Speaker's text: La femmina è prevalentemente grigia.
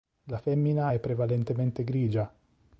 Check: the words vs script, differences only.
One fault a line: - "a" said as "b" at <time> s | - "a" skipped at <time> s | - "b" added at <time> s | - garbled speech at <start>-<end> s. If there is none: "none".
none